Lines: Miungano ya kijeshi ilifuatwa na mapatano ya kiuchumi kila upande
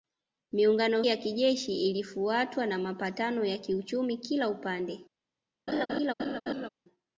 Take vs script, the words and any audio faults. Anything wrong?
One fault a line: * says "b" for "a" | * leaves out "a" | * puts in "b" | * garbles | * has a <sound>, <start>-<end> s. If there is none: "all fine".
* has a laugh, 5.7-6.7 s